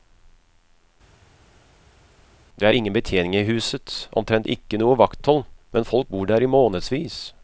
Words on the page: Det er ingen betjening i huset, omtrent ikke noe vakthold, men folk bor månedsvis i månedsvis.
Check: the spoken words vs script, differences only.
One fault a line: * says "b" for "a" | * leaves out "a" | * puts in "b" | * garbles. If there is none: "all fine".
* says "der" for "månedsvis"